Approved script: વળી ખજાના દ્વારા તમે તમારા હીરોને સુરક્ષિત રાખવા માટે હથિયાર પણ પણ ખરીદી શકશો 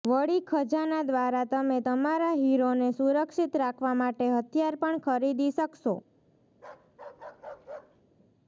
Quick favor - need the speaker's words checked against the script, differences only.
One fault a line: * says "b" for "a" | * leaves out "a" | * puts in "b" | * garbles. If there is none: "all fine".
* leaves out "પણ"